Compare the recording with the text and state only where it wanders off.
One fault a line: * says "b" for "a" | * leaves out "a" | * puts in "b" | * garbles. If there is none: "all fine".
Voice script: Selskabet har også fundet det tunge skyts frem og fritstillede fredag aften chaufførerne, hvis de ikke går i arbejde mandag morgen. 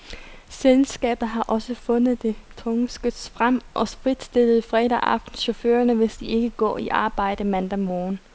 all fine